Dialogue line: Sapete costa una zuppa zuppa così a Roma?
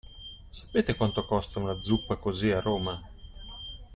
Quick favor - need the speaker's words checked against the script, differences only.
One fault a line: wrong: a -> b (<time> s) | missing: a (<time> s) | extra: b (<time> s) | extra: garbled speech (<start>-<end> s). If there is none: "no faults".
extra: quanto (0.9 s)
missing: zuppa (2.1 s)